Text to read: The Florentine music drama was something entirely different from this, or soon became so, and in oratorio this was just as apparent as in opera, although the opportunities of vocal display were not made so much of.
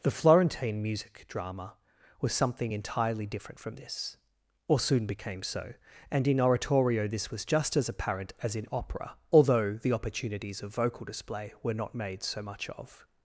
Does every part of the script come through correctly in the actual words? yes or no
yes